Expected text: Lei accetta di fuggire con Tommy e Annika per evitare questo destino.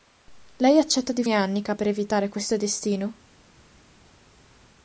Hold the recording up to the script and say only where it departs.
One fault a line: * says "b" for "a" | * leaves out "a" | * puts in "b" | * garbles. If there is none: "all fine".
* leaves out "fuggire con Tommy"